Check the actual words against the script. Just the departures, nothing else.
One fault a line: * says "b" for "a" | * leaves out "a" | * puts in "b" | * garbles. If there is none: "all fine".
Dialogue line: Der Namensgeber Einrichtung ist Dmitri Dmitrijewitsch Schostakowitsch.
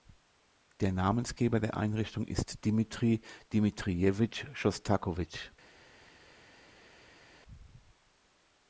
* puts in "der"